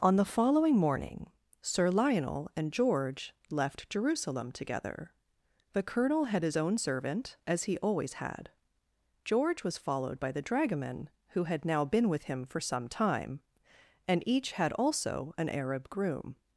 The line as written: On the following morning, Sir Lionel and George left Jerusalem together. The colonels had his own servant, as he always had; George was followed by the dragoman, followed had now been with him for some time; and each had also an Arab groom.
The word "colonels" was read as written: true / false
false